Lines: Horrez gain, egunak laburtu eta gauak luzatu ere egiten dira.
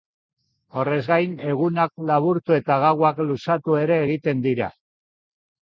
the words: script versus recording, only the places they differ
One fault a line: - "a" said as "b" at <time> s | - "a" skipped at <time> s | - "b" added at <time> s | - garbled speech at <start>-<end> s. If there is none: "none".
none